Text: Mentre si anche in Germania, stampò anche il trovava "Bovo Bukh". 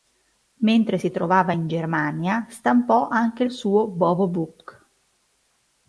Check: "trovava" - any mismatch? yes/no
yes